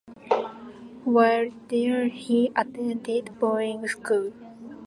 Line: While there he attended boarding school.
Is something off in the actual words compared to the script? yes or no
no